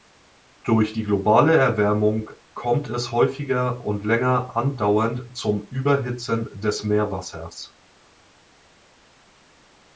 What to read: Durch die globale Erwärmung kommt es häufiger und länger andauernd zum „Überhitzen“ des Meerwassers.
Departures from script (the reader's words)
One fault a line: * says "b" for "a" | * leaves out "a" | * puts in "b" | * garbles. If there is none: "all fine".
all fine